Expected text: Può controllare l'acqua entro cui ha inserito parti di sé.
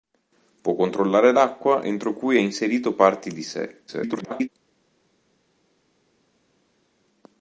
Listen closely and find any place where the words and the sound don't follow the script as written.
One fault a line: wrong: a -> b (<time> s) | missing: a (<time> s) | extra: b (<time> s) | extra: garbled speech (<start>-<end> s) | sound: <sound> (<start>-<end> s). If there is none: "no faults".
extra: garbled speech (3.9-4.5 s)